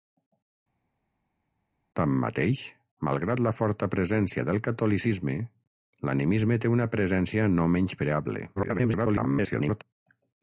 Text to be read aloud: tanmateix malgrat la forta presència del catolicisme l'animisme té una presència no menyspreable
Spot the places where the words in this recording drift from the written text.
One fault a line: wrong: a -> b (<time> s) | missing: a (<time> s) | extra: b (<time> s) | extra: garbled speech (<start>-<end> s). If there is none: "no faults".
extra: garbled speech (8.6-9.8 s)